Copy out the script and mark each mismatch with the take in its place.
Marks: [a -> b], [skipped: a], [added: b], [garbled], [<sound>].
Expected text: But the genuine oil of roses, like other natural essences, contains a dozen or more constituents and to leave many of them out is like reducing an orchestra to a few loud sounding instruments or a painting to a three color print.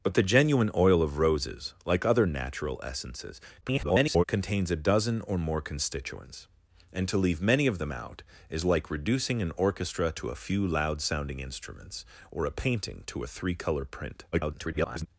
But the genuine oil of roses, like other natural essences, [garbled] contains a dozen or more constituents and to leave many of them out is like reducing an orchestra to a few loud sounding instruments or a painting to a three color print. [garbled]